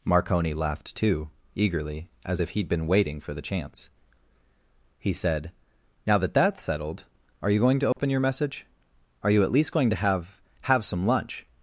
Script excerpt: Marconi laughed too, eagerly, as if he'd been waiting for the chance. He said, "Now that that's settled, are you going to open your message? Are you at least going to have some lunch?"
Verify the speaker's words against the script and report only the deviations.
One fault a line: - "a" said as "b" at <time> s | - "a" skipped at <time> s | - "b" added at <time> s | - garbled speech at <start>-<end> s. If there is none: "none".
- "have" added at 10.6 s